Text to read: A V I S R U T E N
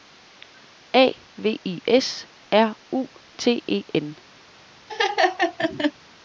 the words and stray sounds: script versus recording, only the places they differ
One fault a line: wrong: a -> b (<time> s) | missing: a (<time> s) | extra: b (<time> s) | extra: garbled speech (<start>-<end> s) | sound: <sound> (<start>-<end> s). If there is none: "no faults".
sound: laugh (4.9-5.9 s)